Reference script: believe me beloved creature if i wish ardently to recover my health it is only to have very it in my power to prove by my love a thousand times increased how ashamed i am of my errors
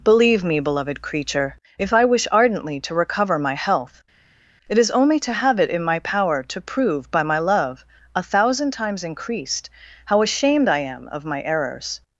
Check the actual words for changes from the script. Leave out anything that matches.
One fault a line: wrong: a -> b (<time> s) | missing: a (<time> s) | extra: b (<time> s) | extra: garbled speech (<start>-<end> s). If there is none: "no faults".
missing: very (5.6 s)